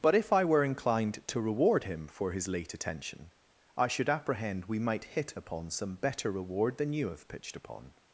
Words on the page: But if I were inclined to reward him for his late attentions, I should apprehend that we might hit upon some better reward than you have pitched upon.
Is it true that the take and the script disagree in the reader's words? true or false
true